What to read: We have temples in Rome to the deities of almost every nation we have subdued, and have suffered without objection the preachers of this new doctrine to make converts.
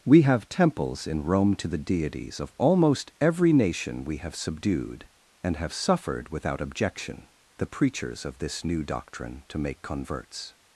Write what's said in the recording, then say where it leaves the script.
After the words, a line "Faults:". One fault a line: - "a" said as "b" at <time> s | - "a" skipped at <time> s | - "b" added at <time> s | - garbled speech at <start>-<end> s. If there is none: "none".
We have temples in Rome to the deities of almost every nation we have subdued, and have suffered without objection the preachers of this new doctrine to make converts.
Faults:
none